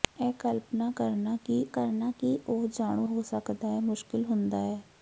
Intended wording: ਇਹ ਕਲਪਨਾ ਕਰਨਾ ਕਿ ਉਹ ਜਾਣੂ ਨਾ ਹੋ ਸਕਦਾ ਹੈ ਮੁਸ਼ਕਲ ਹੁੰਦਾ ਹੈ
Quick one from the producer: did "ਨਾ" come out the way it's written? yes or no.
no